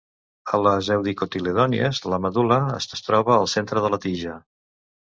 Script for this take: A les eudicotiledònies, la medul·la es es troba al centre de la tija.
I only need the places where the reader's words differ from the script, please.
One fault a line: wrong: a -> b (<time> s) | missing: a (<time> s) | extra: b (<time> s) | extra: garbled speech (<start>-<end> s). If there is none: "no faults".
no faults